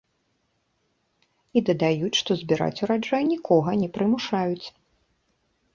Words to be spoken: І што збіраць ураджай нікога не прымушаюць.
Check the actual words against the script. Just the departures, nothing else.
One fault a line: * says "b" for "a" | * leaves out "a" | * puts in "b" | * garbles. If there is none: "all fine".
* puts in "дадаюць"